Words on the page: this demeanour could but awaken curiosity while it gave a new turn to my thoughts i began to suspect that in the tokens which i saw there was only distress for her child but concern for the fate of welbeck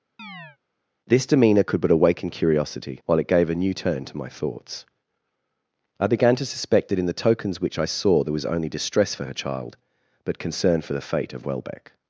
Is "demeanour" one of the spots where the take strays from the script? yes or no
no